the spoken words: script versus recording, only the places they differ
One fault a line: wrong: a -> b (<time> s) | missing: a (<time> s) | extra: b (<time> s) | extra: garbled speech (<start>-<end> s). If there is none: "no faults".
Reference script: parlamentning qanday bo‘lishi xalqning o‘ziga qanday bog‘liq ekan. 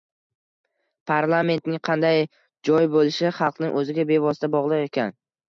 extra: joy (2.7 s)
wrong: qanday -> bevosita (4.2 s)